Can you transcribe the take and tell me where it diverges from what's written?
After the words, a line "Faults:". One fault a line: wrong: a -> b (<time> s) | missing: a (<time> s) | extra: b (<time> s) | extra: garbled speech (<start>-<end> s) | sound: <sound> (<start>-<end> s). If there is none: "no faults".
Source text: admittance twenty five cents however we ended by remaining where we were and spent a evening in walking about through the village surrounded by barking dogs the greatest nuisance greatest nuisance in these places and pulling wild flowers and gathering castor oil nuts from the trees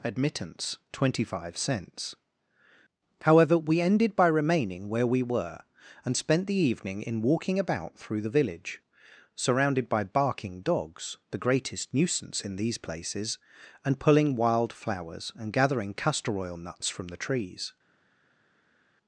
admittance twenty five cents however we ended by remaining where we were and spent the evening in walking about through the village surrounded by barking dogs the greatest nuisance in these places and pulling wild flowers and gathering castor oil nuts from the trees
Faults:
wrong: a -> the (6.5 s)
missing: greatest nuisance (12.4 s)